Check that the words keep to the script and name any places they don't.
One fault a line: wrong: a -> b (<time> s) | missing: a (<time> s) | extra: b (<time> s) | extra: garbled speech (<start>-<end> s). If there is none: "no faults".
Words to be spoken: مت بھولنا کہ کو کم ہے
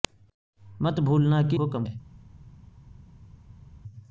no faults